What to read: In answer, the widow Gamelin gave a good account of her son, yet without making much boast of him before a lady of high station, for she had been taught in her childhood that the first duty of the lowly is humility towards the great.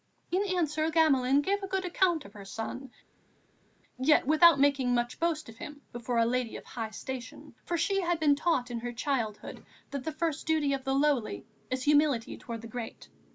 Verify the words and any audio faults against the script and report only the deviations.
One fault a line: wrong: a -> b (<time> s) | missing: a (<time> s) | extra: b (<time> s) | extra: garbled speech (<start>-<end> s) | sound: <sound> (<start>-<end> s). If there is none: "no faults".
missing: the widow (0.9 s)